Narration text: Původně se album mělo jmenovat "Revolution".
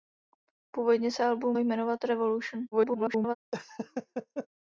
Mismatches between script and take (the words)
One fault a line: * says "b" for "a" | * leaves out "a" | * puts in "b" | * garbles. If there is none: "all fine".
* leaves out "mělo"
* garbles